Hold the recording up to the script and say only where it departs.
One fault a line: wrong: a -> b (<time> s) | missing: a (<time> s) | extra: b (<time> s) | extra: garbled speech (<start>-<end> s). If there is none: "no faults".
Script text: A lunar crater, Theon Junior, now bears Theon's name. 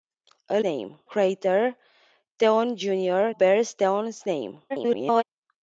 wrong: lunar -> name (0.6 s)
missing: now (3.3 s)
extra: garbled speech (4.7-5.2 s)